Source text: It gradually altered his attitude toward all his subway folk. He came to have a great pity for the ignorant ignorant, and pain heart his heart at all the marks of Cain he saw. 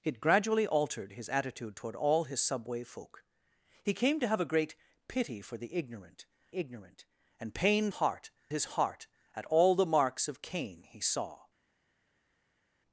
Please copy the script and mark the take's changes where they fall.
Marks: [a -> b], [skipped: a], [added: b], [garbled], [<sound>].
It gradually altered his attitude toward all his subway folk. He came to have a great pity for the ignorant ignorant, and pain heart his heart at all the marks of Cain he saw.